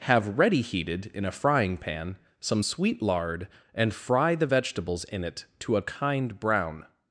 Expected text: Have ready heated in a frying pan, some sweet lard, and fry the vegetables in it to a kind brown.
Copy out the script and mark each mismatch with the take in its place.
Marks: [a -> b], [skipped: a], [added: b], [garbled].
Have ready heated in a frying pan, some sweet lard, and fry the vegetables in it to a kind brown.